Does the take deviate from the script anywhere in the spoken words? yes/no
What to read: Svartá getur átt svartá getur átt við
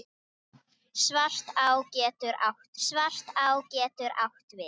no